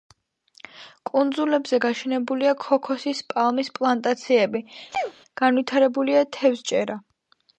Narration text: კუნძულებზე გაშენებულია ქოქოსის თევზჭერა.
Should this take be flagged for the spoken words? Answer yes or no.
yes